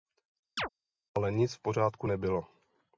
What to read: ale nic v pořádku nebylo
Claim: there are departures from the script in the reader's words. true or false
false